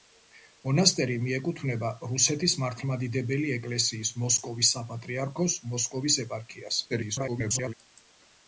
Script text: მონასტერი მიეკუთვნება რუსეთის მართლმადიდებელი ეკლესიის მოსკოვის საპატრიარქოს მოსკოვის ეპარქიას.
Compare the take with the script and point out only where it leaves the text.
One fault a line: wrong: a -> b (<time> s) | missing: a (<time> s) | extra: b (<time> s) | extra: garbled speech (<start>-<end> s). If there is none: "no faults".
extra: garbled speech (6.9-7.7 s)